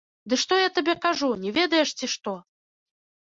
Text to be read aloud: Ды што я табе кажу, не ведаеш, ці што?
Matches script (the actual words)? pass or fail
pass